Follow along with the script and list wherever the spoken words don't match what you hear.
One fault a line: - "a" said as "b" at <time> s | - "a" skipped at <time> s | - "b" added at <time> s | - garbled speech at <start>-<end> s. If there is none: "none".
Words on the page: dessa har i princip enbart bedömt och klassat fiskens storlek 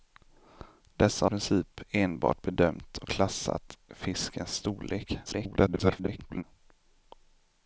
- "har" skipped at 1.3 s
- garbled speech at 5.2-6.4 s